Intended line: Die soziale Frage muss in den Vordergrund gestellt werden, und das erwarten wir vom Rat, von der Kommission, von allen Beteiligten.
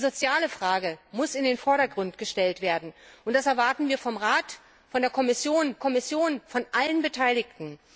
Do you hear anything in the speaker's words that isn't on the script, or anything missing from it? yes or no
yes